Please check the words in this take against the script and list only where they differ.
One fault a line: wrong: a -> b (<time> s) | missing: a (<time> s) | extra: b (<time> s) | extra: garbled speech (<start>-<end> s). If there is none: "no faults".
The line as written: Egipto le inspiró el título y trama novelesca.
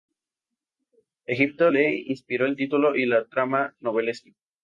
extra: la (3.1 s)